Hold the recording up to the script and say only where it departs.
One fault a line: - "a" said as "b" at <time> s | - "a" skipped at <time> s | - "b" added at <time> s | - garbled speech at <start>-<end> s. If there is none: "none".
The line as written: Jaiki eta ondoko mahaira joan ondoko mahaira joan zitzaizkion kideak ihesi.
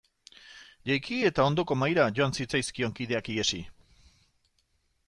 - "ondoko mahaira joan" skipped at 2.3 s